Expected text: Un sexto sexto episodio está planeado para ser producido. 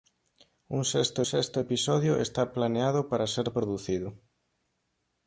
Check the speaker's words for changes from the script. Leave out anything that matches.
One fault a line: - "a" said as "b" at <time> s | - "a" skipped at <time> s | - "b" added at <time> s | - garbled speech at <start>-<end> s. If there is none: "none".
none